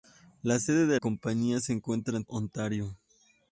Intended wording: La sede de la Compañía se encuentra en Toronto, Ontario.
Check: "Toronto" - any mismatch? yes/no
yes